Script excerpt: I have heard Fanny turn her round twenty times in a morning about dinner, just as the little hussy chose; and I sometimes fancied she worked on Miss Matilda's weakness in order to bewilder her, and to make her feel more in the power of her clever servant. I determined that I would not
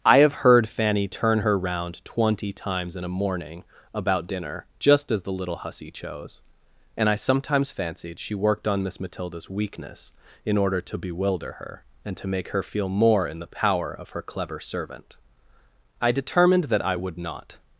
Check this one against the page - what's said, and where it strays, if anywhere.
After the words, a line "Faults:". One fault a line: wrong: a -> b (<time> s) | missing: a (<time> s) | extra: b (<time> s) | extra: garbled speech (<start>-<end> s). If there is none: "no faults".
I have heard Fanny turn her round twenty times in a morning about dinner, just as the little hussy chose; and I sometimes fancied she worked on Miss Matilda's weakness in order to bewilder her, and to make her feel more in the power of her clever servant. I determined that I would not
Faults:
no faults